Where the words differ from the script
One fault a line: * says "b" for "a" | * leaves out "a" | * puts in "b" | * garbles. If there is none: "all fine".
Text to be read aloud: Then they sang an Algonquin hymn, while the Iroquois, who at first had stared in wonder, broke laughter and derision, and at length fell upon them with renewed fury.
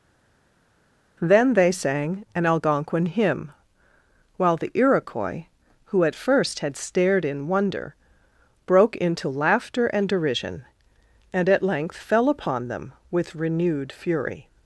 * puts in "into"